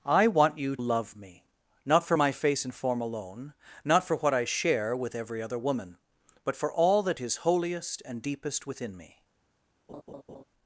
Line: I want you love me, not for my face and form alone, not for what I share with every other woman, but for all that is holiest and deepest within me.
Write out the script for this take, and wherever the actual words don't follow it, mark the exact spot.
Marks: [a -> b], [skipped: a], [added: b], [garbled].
I want you love me, not for my face and form alone, not for what I share with every other woman, but for all that is holiest and deepest within me.